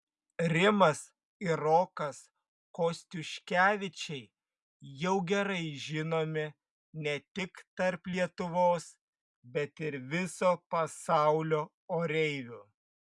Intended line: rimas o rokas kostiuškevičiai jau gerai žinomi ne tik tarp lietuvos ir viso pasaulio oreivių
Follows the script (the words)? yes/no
no